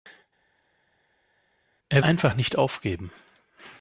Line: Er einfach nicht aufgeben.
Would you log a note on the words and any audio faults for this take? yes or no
no